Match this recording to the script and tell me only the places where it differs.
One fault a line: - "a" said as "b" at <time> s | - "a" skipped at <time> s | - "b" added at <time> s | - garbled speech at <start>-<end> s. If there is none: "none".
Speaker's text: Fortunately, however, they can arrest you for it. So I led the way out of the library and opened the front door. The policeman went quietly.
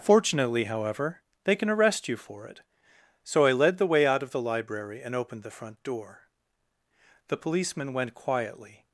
none